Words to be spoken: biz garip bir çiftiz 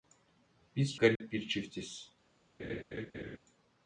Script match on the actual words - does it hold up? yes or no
yes